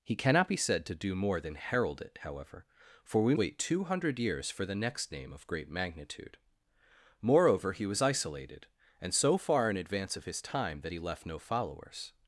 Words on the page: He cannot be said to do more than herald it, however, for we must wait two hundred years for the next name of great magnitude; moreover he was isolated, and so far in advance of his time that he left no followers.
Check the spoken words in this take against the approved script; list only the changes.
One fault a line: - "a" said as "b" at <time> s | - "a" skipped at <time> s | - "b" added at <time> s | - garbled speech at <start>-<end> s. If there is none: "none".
- "must" skipped at 3.4 s